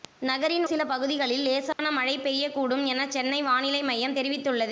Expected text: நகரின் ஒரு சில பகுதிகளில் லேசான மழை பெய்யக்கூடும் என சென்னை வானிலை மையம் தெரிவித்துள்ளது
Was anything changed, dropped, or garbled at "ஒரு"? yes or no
yes